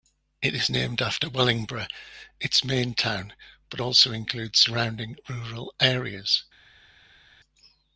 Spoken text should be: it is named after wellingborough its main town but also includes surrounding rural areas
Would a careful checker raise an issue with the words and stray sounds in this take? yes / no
no